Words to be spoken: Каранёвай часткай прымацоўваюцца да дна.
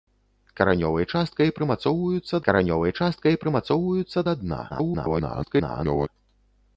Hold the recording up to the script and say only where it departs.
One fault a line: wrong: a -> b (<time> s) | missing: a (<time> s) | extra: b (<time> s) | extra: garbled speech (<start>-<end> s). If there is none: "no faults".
extra: каранёвай часткай прымацоўваюцца (2.5 s)
extra: garbled speech (4.7-6.1 s)